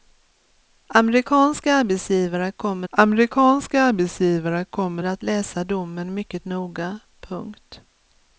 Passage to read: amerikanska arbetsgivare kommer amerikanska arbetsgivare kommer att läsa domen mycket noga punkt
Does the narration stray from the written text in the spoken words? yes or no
no